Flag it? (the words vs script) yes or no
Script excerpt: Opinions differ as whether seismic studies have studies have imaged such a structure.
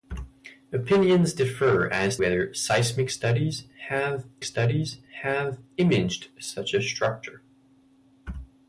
no